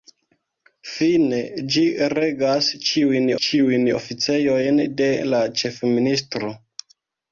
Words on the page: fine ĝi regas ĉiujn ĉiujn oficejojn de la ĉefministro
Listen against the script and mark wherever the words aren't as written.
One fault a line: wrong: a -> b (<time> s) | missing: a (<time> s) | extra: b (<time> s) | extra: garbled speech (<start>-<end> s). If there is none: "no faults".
no faults